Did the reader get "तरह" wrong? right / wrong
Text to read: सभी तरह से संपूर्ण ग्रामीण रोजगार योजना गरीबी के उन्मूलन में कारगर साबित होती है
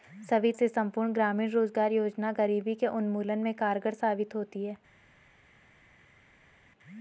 wrong